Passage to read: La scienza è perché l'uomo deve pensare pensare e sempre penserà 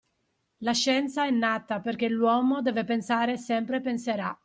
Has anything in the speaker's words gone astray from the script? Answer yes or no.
yes